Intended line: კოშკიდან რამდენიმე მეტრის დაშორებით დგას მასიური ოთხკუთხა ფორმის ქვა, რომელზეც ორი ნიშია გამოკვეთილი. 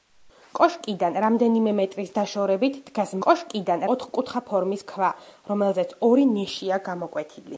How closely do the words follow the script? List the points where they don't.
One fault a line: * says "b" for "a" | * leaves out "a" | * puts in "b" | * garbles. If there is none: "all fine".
* says "კოშკიდან" for "მასიური"